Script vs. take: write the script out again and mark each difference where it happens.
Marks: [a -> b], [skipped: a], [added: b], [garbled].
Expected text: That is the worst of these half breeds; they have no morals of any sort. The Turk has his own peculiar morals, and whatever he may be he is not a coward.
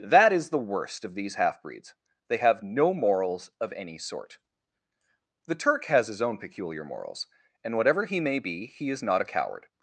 That is the worst of these half breeds; they have no morals of any sort. The Turk has his own peculiar morals, and whatever he may be he is not a coward.